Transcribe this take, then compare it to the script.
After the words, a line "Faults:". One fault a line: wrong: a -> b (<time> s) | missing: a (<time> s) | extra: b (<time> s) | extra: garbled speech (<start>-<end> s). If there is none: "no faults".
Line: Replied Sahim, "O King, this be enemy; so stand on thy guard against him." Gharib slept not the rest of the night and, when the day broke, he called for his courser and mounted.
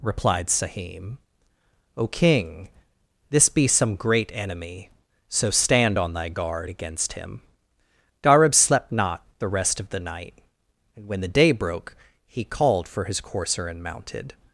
Replied Sahim, "O King, this be some great enemy; so stand on thy guard against him." Gharib slept not the rest of the night and, when the day broke, he called for his courser and mounted.
Faults:
extra: some great (3.7 s)